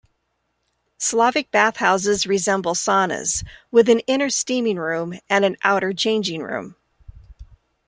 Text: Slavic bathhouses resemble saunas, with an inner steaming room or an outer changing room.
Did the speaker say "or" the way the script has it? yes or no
no